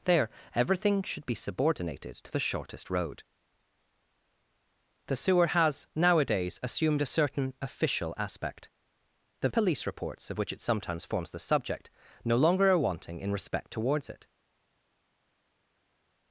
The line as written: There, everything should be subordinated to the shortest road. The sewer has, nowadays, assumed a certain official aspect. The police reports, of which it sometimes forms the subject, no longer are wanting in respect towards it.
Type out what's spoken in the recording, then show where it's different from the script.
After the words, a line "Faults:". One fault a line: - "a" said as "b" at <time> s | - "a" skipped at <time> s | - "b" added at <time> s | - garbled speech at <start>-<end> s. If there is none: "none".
There, everything should be subordinated to the shortest road. The sewer has, nowadays, assumed a certain official aspect. The police reports, of which it sometimes forms the subject, no longer are wanting in respect towards it.
Faults:
none